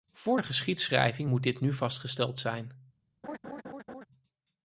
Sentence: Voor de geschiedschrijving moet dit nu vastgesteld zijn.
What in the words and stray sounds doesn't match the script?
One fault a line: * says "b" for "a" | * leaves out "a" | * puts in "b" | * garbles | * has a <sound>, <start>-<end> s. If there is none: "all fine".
* has a laugh, 3.2-4.1 s